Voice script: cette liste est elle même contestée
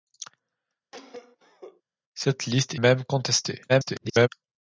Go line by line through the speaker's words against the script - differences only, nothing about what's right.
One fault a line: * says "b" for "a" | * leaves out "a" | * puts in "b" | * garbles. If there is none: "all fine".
* leaves out "est elle"
* garbles